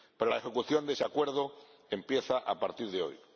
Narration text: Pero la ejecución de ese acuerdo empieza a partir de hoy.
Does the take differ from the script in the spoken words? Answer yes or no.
no